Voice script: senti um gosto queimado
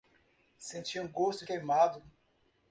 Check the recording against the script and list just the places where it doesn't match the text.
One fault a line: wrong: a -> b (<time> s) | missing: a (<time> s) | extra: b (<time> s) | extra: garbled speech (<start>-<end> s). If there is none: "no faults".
no faults